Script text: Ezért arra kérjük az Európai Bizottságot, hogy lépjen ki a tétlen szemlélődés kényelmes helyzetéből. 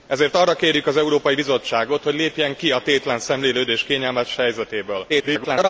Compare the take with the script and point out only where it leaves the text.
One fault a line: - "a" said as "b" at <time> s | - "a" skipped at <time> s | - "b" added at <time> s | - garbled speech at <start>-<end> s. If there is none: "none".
- garbled speech at 5.1-5.7 s